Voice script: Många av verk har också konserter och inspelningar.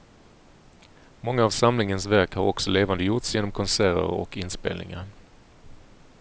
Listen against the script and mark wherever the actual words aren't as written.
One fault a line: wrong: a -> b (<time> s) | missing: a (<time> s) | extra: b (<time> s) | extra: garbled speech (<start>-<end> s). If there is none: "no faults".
extra: samlingens (1.5 s)
extra: levandegjorts genom (2.7 s)